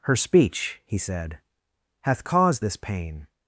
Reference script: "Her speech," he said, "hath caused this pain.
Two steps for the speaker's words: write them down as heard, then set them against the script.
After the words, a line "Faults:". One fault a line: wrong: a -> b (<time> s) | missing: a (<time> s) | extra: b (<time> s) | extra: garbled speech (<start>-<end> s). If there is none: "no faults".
"Her speech," he said, "hath caused this pain.
Faults:
no faults